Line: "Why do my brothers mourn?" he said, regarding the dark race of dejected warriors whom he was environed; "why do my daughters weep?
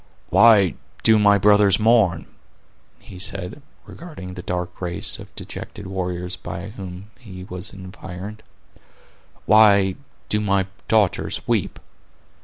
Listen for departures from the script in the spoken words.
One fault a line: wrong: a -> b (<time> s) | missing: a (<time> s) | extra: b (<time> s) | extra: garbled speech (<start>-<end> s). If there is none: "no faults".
extra: by (6.3 s)